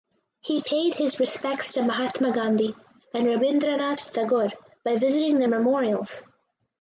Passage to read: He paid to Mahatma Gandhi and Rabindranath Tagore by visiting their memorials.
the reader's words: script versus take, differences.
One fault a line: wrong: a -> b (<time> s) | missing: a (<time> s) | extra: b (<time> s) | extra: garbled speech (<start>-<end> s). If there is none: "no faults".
extra: his respects (0.9 s)